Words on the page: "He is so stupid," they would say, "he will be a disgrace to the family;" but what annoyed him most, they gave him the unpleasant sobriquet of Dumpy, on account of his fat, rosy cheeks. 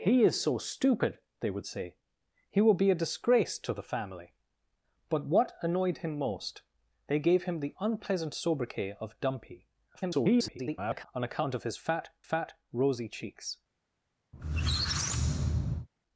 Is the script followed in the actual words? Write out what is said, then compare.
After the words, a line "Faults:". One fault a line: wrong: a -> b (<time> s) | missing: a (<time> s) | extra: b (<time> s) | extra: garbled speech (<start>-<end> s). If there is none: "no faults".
"He is so stupid," they would say, "he will be a disgrace to the family;" but what annoyed him most, they gave him the unpleasant sobriquet of Dumpy, [garbled] on account of his fat fat, rosy cheeks.
Faults:
extra: garbled speech (9.9-11.1 s)
extra: fat (12.2 s)